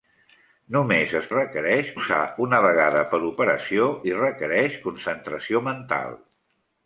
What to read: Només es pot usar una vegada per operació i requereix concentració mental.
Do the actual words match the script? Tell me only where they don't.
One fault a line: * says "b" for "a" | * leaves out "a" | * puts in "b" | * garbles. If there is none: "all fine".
* says "requereix" for "pot"